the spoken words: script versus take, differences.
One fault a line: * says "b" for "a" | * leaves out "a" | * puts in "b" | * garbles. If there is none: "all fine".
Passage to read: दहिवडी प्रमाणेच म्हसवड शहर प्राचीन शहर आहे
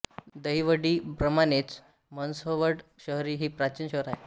* puts in "ही"